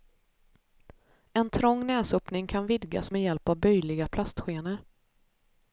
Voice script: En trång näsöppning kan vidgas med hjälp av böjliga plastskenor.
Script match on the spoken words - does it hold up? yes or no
yes